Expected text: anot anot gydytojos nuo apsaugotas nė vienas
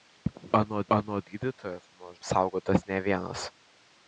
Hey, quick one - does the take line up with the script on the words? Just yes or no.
yes